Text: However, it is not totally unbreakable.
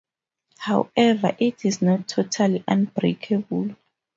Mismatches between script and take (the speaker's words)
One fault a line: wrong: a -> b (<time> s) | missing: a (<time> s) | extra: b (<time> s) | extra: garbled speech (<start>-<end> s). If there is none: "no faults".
no faults